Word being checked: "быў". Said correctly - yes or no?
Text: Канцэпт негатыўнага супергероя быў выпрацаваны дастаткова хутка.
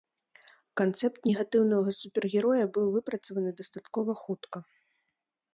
yes